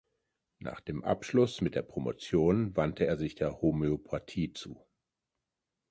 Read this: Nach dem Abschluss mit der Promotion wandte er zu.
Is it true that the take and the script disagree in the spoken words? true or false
true